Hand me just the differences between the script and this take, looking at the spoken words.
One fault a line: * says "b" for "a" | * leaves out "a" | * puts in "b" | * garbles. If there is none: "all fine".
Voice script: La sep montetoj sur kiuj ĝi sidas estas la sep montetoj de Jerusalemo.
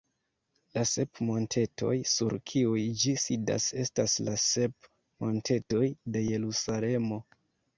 all fine